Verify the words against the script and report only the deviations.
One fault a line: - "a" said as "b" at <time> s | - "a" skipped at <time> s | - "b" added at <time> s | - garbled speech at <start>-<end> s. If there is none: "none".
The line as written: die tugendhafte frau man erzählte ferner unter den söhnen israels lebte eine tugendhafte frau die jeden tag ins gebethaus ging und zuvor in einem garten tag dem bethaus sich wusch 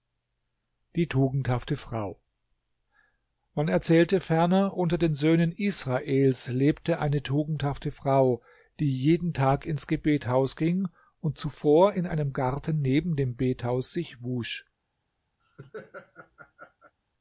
- "tag" said as "neben" at 12.8 s